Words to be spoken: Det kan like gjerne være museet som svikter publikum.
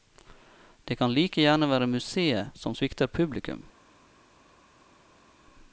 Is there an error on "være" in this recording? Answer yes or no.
no